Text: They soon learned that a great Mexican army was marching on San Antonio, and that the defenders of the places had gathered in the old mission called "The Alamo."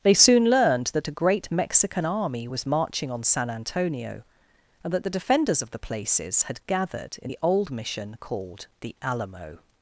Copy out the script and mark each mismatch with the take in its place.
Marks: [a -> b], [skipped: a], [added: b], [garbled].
They soon learned that a great Mexican army was marching on San Antonio, and that the defenders of the places had gathered in the old mission called "The Alamo."